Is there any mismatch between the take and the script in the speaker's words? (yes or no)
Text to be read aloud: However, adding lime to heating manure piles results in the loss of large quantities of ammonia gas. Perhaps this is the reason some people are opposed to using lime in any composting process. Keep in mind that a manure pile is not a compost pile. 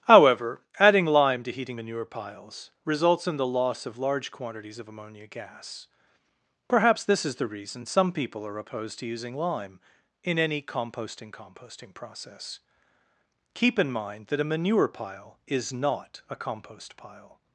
yes